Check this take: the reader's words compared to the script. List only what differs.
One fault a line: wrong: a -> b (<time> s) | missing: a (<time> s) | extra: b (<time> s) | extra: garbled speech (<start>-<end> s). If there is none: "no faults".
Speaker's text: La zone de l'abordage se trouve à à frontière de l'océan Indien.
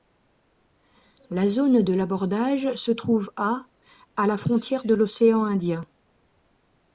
extra: la (4.3 s)